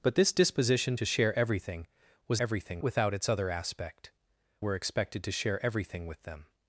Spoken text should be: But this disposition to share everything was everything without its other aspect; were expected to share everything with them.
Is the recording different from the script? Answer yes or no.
no